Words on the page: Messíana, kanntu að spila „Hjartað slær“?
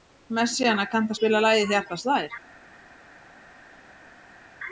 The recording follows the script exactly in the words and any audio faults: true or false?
false